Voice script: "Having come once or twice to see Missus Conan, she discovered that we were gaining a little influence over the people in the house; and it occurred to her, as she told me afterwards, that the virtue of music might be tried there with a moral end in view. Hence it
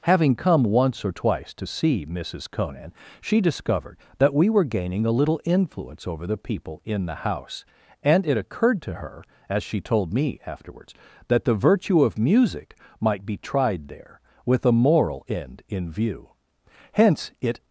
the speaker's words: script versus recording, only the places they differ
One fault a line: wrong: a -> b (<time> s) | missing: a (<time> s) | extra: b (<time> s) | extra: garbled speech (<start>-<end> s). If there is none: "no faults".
no faults